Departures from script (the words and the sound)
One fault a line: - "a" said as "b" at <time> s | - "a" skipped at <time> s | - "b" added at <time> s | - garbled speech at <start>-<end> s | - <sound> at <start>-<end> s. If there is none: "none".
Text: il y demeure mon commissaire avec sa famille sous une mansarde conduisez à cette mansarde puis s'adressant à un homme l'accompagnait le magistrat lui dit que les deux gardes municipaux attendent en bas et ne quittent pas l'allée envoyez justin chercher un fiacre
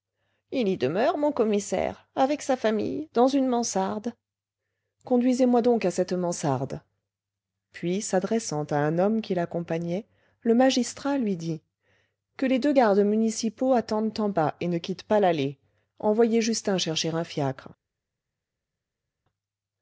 - "sous" said as "dans" at 3.1 s
- "moi donc" added at 5.5 s
- "qui" added at 9.2 s